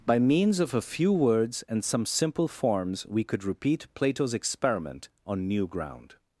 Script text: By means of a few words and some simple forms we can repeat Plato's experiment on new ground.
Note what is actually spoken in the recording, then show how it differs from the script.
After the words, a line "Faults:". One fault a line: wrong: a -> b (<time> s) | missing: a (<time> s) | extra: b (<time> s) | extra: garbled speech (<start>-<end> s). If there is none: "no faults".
By means of a few words and some simple forms we could repeat Plato's experiment on new ground.
Faults:
wrong: can -> could (3.2 s)